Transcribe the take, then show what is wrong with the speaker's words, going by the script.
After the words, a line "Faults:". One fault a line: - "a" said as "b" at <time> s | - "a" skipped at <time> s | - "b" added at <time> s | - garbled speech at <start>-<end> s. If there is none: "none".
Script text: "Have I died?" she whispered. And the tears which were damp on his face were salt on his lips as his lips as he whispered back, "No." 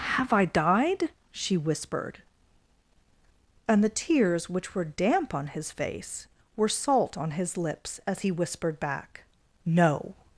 "Have I died?" she whispered. And the tears which were damp on his face were salt on his lips as he whispered back, "No."
Faults:
- "his lips as" skipped at 8.2 s